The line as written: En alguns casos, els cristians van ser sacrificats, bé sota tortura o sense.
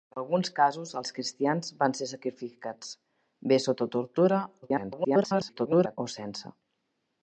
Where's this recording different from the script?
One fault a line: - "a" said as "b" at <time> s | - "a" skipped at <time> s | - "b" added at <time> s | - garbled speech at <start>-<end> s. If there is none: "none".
- garbled speech at 4.6-6.0 s